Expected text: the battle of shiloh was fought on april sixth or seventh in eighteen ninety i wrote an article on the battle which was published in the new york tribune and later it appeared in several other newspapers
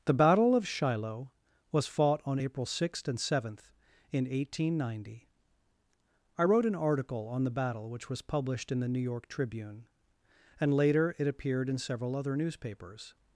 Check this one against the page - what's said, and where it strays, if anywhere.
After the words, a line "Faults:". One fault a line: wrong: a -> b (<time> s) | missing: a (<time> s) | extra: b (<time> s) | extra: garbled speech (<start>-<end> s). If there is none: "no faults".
the battle of shiloh was fought on april sixth and seventh in eighteen ninety i wrote an article on the battle which was published in the new york tribune and later it appeared in several other newspapers
Faults:
wrong: or -> and (3.1 s)